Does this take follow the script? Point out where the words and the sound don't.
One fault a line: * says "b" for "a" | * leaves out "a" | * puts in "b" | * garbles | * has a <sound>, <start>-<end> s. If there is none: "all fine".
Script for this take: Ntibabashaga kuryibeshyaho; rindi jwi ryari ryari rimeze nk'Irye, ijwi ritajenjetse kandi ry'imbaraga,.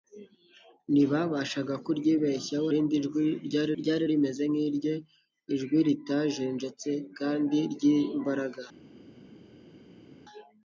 all fine